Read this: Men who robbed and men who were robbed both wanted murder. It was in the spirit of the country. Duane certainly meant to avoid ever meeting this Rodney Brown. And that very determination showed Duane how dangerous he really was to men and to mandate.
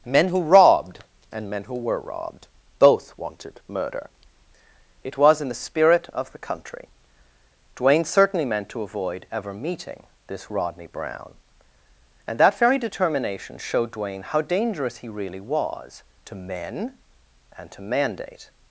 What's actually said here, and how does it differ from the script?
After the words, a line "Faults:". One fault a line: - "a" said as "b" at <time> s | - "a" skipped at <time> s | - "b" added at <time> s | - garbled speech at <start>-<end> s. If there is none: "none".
Men who robbed and men who were robbed both wanted murder. It was in the spirit of the country. Duane certainly meant to avoid ever meeting this Rodney Brown. And that very determination showed Duane how dangerous he really was to men and to mandate.
Faults:
none